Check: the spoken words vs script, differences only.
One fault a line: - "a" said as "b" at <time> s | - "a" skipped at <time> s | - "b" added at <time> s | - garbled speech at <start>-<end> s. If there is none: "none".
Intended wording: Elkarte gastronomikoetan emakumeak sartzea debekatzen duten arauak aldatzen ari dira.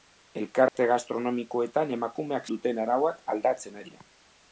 - "sartzea debekatzen" skipped at 2.5 s
- "ari" skipped at 3.8 s